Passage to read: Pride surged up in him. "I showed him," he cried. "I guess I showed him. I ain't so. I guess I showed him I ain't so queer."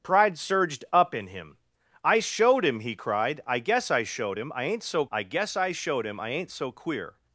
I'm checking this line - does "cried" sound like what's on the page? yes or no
yes